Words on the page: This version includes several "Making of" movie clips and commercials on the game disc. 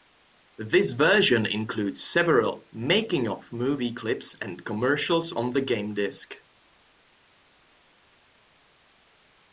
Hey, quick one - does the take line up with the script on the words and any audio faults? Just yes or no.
yes